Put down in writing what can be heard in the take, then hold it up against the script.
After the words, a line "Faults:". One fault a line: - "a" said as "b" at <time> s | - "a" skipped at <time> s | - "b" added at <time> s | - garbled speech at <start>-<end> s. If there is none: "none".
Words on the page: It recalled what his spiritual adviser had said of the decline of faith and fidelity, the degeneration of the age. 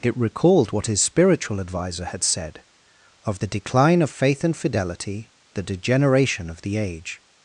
It recalled what his spiritual adviser had said of the decline of faith and fidelity, the degeneration of the age.
Faults:
none